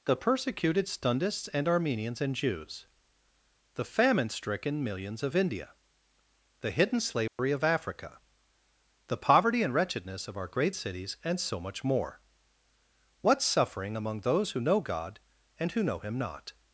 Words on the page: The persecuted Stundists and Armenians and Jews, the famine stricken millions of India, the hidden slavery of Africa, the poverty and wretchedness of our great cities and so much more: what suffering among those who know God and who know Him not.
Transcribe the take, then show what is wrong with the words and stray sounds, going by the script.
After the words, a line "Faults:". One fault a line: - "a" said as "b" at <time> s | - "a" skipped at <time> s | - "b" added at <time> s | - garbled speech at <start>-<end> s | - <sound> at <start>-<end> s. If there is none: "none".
The persecuted Stundists and Armenians and Jews, the famine stricken millions of India, the hidden slavery of Africa, the poverty and wretchedness of our great cities and so much more: what suffering among those who know God and who know Him not.
Faults:
- dropout at 7.3-7.4 s